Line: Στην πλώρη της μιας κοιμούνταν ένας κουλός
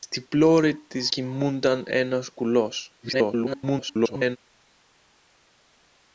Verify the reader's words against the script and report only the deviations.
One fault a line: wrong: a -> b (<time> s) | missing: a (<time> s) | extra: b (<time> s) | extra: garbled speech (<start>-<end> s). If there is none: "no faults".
missing: μιας (1.1 s)
extra: garbled speech (3.0-4.4 s)